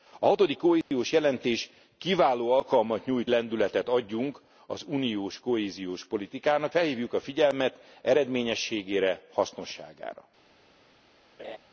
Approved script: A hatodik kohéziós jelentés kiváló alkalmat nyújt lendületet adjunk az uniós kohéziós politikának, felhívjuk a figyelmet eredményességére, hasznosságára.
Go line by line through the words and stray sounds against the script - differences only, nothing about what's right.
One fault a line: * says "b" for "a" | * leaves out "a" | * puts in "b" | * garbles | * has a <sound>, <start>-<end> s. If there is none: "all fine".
* has a dropout, 0.8-0.9 s
* has a laugh, 11.4-11.6 s